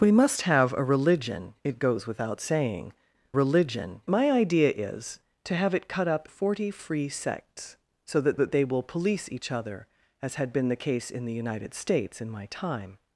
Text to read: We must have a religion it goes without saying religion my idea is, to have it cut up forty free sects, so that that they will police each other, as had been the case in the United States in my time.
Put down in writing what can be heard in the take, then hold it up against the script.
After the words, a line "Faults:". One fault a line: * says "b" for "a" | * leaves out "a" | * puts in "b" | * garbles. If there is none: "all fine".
We must have a religion it goes without saying religion my idea is, to have it cut up forty free sects, so that that they will police each other, as had been the case in the United States in my time.
Faults:
all fine